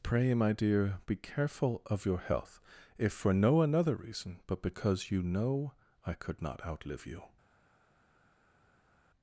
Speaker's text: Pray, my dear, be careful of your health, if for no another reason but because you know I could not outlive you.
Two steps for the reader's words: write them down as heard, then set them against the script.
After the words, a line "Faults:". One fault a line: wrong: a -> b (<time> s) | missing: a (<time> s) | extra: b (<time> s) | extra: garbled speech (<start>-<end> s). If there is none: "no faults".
Pray, my dear, be careful of your health, if for no another reason but because you know I could not outlive you.
Faults:
no faults